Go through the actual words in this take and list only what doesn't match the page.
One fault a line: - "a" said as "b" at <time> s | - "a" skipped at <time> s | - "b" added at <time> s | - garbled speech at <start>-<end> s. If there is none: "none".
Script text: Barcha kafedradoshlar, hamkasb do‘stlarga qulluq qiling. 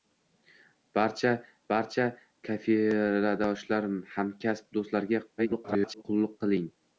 - "barcha" added at 1.7 s
- garbled speech at 5.4-6.0 s